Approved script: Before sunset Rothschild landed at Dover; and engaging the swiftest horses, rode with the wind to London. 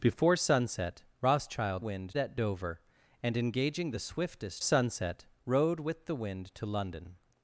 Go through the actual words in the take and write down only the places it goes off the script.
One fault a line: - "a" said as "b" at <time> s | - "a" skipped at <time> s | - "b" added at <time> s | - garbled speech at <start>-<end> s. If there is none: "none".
- "landed" said as "wind" at 1.8 s
- "horses" said as "sunset" at 4.6 s